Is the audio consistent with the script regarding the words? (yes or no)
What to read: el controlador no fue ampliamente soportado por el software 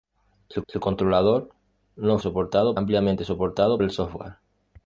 no